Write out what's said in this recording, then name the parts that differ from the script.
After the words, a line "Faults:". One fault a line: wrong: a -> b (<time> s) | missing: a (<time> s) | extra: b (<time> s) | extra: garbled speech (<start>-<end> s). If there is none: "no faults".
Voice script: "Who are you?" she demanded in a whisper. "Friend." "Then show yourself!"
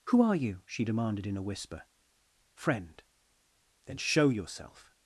"Who are you?" she demanded in a whisper. "Friend." "Then show yourself!"
Faults:
no faults